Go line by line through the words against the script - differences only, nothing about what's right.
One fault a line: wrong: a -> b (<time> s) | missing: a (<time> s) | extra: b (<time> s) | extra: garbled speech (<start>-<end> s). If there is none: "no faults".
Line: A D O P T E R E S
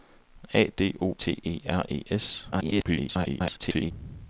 missing: P (1.1 s)
extra: garbled speech (2.5-3.9 s)